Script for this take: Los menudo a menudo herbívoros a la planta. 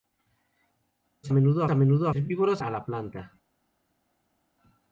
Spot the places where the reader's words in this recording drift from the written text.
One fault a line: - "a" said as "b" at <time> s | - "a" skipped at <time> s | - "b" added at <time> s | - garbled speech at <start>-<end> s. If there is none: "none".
none